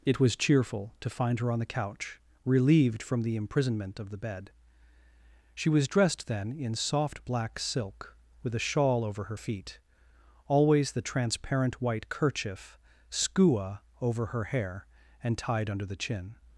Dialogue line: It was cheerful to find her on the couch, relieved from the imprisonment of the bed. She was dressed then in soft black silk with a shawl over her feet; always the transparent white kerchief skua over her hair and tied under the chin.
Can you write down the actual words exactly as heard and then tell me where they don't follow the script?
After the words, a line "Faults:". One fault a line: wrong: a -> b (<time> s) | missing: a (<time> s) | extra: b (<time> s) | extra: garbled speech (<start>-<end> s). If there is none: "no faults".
It was cheerful to find her on the couch, relieved from the imprisonment of the bed. She was dressed then in soft black silk with a shawl over her feet; always the transparent white kerchief skua over her hair and tied under the chin.
Faults:
no faults